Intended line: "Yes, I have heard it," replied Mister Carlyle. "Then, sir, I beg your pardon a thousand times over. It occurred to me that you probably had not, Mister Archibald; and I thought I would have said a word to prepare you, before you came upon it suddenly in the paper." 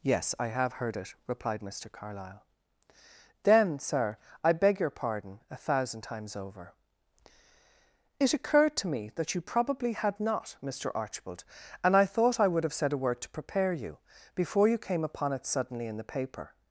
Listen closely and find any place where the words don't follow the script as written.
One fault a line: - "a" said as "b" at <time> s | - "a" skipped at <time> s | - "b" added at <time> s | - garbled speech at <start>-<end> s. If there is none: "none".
none